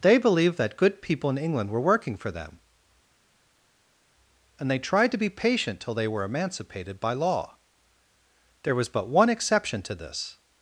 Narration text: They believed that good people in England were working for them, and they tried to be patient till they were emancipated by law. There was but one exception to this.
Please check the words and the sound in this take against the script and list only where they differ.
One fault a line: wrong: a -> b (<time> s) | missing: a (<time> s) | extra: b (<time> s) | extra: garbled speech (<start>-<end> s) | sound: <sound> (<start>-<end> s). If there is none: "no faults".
no faults